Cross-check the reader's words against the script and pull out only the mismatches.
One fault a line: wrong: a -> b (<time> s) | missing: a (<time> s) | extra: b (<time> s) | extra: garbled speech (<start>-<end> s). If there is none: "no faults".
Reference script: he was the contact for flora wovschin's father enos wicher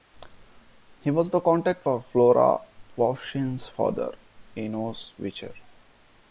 no faults